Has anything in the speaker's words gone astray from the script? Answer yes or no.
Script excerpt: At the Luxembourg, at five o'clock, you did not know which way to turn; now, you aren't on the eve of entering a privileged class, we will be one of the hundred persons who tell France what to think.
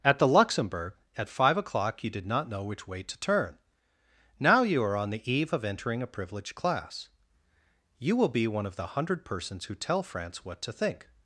yes